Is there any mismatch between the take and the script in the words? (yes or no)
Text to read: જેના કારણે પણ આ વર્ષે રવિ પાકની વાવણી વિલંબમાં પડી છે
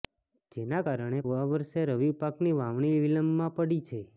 yes